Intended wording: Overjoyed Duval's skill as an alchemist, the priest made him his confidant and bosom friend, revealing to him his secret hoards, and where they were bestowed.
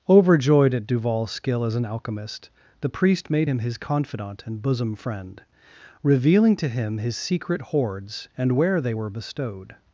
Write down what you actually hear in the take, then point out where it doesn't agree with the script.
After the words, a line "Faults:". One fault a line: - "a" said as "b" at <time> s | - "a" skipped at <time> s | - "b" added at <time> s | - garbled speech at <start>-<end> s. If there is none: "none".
Overjoyed at Duval's skill as an alchemist, the priest made him his confidant and bosom friend, revealing to him his secret hoards, and where they were bestowed.
Faults:
- "at" added at 0.7 s